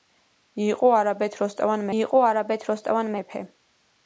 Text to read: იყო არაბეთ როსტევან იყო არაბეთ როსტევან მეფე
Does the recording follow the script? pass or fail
pass